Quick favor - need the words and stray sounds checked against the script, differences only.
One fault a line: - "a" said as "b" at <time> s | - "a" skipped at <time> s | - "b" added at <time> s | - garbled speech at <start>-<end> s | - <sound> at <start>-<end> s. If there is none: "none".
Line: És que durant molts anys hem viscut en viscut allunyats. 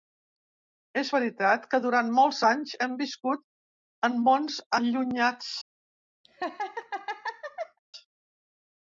- "veritat" added at 1.1 s
- "viscut" said as "mons" at 4.3 s
- laugh at 6.2-7.8 s